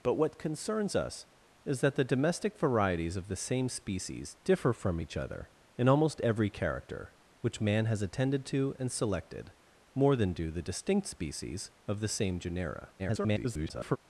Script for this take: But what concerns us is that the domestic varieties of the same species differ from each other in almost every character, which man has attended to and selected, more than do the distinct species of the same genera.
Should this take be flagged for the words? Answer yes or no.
yes